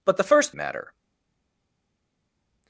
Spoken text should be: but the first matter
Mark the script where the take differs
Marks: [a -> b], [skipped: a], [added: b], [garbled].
but the first matter